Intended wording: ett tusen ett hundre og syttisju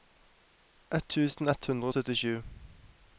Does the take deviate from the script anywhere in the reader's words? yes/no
no